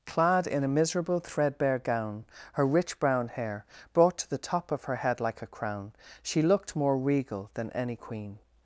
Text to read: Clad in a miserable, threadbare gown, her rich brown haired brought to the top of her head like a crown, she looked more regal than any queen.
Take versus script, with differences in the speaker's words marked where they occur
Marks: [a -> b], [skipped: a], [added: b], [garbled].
Clad in a miserable, threadbare gown, her rich brown [haired -> hair] brought to the top of her head like a crown, she looked more regal than any queen.